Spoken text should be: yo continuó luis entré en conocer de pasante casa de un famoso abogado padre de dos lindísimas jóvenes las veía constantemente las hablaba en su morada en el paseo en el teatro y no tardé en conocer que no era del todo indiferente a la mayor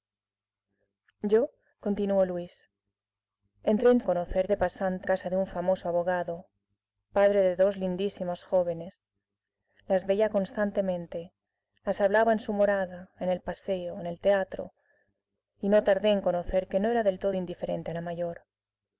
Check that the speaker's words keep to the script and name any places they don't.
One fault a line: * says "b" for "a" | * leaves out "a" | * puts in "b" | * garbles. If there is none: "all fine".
all fine